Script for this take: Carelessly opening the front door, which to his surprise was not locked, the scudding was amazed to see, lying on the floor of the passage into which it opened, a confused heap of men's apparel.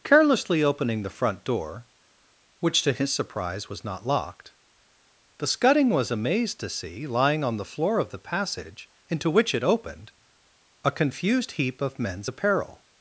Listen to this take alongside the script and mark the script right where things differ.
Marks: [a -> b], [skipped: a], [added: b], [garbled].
Carelessly opening the front door, which to his surprise was not locked, the scudding was amazed to see, lying on the floor of the passage into which it opened, a confused heap of men's apparel.